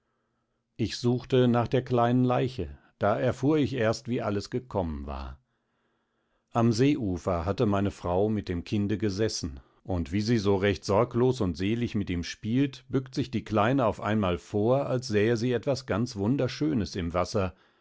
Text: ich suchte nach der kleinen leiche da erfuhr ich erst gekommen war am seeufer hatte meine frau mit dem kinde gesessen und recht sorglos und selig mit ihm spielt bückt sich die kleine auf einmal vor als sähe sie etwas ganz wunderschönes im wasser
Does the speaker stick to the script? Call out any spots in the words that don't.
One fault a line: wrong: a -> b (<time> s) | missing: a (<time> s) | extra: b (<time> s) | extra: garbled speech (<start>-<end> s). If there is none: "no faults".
extra: wie alles (4.1 s)
extra: wie sie so (10.1 s)